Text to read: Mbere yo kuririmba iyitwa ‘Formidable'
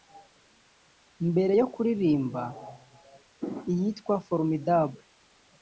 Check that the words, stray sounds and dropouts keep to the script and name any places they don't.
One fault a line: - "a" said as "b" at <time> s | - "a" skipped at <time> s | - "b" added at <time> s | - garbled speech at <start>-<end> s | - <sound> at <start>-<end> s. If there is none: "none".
none